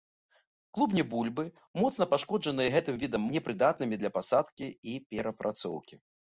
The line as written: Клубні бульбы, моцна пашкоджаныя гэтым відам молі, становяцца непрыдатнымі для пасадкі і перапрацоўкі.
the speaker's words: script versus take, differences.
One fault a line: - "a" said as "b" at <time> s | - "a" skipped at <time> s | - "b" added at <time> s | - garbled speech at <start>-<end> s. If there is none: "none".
- "молі становяцца" skipped at 3.3 s